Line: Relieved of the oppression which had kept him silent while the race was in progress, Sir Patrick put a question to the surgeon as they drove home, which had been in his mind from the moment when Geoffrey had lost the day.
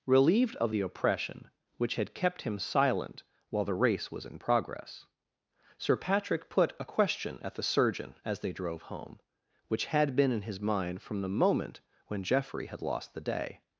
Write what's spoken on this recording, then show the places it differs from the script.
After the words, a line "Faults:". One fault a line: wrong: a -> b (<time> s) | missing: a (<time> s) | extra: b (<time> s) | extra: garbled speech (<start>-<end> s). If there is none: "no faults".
Relieved of the oppression which had kept him silent while the race was in progress, Sir Patrick put a question at the surgeon as they drove home, which had been in his mind from the moment when Geoffrey had lost the day.
Faults:
wrong: to -> at (7.4 s)